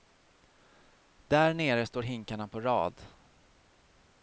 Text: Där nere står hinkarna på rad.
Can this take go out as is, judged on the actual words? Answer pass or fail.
pass